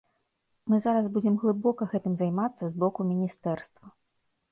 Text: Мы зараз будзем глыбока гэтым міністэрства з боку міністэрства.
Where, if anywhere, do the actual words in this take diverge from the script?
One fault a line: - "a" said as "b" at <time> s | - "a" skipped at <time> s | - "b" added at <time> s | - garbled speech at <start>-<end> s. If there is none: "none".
- "міністэрства" said as "займацца" at 2.2 s